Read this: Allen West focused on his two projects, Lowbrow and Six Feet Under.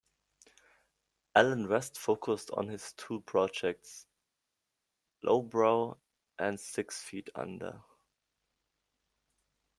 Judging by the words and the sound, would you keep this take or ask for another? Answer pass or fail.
pass